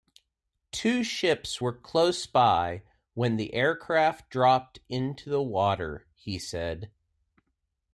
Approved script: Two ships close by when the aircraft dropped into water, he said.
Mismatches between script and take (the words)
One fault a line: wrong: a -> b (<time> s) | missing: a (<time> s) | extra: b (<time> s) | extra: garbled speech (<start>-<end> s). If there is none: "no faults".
extra: were (1.6 s)
extra: the (5.3 s)